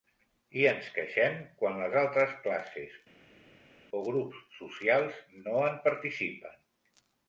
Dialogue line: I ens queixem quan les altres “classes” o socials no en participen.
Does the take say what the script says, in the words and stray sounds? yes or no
no